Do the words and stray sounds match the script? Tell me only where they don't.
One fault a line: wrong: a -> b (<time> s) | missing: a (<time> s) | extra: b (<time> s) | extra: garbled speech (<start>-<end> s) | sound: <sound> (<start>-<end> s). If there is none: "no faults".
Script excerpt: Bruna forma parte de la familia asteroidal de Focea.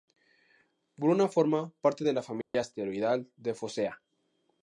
sound: dropout (2.4-2.5 s)